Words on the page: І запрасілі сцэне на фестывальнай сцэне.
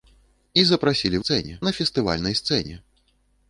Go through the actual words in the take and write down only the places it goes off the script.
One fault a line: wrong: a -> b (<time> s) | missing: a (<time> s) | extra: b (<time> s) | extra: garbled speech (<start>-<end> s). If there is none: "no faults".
no faults